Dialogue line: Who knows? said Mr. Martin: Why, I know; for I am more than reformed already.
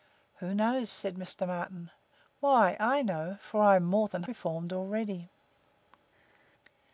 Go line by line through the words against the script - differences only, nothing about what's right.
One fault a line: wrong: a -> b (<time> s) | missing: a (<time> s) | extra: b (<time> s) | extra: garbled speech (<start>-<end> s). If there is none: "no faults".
no faults